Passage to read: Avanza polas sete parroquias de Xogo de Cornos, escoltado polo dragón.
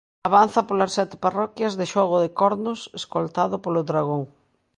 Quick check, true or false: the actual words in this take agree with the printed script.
true